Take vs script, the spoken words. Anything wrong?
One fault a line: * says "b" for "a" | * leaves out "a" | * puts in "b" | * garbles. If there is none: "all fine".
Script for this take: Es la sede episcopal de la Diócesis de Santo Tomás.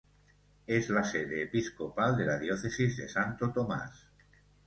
all fine